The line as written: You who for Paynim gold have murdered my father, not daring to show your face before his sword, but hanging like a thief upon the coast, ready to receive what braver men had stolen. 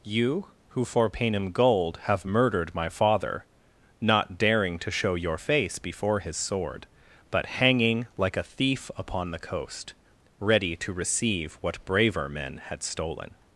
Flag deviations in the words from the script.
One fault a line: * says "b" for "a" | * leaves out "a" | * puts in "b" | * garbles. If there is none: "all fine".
all fine